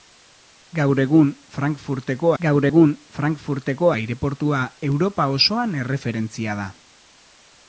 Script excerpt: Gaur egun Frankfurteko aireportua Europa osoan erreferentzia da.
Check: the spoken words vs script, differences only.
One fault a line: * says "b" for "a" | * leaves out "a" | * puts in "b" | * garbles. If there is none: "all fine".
* puts in "gaur egun Frankfurteko"